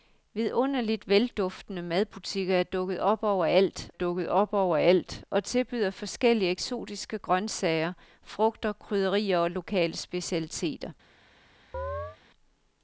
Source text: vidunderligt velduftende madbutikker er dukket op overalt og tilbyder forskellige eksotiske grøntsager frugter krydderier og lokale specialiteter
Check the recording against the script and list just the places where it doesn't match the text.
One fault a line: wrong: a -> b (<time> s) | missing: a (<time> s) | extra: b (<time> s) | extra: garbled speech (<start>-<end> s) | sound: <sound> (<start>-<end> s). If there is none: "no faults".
extra: dukket op overalt (3.9 s)
sound: chirp (11.7-12.2 s)